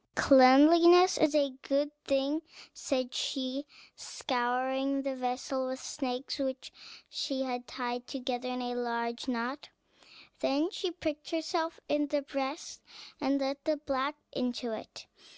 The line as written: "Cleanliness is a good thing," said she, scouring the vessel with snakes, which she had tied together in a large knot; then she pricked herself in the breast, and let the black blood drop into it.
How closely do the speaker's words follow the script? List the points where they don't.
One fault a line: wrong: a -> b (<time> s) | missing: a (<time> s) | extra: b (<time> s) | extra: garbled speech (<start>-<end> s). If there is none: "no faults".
missing: blood drop (14.2 s)